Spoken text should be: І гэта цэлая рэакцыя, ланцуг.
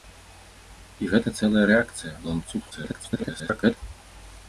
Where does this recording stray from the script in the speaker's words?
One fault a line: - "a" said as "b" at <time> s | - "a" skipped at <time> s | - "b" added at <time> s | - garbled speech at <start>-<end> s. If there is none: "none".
- garbled speech at 2.7-3.8 s